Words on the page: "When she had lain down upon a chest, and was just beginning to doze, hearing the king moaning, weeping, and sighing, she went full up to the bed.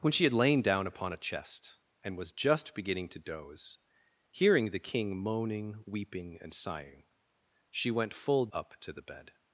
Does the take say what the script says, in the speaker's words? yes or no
yes